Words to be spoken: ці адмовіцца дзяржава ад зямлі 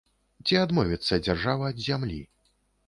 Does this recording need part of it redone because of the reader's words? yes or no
no